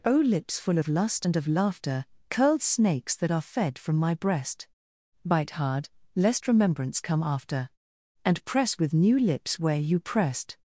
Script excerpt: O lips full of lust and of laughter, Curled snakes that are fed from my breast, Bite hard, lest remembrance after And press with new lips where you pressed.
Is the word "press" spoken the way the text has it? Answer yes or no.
yes